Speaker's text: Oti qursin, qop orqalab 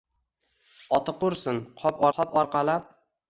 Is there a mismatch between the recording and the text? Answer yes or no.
yes